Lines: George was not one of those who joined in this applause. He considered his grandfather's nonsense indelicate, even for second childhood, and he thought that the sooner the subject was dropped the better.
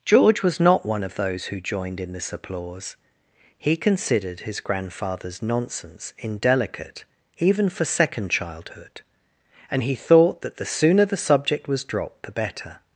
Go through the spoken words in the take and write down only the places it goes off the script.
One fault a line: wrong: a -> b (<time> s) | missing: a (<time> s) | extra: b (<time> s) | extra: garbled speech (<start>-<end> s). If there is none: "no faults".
no faults